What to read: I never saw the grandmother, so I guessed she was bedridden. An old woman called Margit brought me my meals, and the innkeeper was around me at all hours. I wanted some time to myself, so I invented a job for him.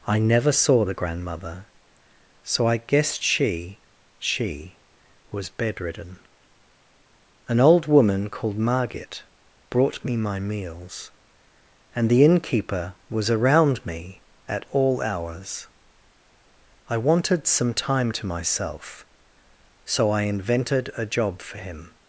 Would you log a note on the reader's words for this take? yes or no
yes